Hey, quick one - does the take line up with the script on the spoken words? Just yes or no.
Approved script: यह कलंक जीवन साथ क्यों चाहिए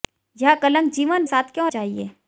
yes